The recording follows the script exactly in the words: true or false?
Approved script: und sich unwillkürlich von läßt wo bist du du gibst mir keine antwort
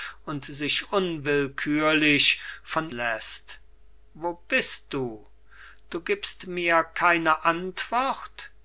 true